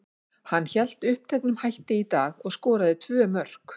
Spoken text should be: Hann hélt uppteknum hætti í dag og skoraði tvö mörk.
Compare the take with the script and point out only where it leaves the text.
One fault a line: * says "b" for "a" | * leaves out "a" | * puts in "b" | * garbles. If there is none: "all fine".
all fine